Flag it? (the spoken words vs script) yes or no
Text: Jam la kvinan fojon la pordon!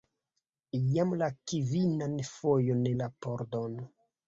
no